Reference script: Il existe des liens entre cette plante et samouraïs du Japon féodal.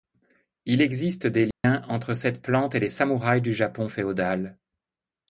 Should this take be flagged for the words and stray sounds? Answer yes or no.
yes